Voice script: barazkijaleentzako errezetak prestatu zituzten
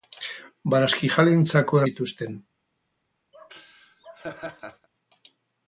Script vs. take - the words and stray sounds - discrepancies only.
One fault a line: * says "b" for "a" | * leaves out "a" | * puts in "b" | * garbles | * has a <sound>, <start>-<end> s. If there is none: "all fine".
* leaves out "errezetak prestatu"
* has a laugh, 3.3-4.9 s